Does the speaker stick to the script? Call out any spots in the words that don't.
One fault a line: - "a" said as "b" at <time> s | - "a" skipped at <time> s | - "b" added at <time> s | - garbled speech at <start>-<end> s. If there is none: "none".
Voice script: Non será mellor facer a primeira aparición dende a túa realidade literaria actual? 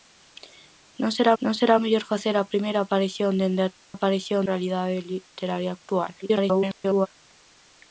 - "non será" added at 1.4 s
- "túa" said as "aparición" at 3.9 s
- garbled speech at 6.2-7.1 s